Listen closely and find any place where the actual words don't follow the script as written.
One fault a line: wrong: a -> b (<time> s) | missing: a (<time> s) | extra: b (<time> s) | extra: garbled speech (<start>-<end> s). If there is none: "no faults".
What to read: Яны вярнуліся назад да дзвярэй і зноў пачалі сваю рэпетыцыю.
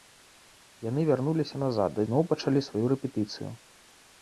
missing: дзвярэй і (2.1 s)